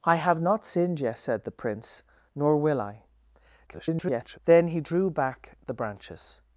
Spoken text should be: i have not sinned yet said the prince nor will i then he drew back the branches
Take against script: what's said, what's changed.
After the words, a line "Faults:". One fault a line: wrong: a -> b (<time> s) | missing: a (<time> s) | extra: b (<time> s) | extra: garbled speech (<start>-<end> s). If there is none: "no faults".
i have not sinned yet said the prince nor will i [garbled] then he drew back the branches
Faults:
extra: garbled speech (3.7-4.4 s)